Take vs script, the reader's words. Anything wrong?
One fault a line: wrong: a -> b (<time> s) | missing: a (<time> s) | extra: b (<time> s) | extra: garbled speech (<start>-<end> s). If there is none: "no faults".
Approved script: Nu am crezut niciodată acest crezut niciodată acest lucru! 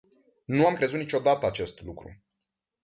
missing: crezut niciodată acest (1.8 s)